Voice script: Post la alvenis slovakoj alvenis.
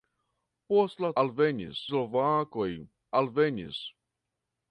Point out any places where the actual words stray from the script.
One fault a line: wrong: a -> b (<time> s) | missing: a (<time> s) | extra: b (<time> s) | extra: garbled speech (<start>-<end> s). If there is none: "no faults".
no faults